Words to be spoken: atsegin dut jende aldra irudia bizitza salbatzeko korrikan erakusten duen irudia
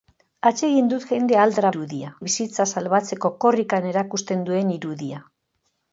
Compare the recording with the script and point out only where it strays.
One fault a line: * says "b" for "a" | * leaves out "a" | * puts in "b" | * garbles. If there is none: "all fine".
all fine